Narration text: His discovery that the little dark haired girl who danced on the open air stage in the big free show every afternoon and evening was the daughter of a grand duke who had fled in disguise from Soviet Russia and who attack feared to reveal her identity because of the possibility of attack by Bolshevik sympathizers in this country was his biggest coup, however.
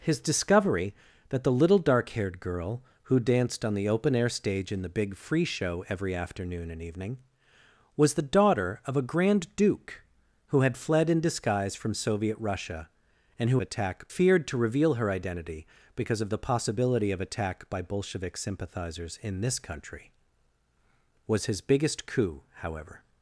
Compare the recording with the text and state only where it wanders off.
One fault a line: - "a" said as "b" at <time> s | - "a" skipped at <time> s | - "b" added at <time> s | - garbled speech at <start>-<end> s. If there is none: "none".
none